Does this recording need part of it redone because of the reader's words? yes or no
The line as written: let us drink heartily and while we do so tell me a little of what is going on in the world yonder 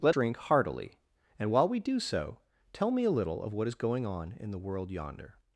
yes